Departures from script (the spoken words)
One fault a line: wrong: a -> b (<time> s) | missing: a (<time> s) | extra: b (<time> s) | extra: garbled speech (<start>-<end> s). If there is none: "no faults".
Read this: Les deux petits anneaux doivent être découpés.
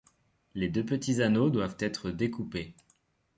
no faults